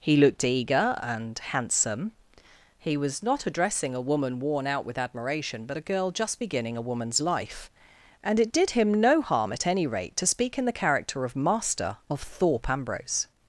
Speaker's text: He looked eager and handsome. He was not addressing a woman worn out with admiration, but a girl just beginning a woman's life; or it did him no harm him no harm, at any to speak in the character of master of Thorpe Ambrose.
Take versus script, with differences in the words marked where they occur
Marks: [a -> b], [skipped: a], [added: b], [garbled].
He looked eager and handsome. He was not addressing a woman worn out with admiration, but a girl just beginning a woman's life; [or -> and] it did him no harm [skipped: him no harm,] at any [added: rate] to speak in the character of master of Thorpe Ambrose.